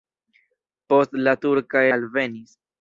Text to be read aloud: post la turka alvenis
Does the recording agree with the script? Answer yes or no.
yes